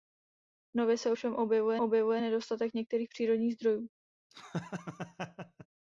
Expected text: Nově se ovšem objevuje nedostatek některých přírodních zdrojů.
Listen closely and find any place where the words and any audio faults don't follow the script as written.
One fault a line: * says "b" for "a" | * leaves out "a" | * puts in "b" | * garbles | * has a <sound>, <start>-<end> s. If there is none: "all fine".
* puts in "objevuje"
* has a laugh, 4.3-5.7 s